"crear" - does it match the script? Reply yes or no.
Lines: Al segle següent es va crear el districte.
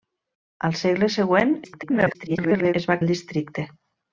no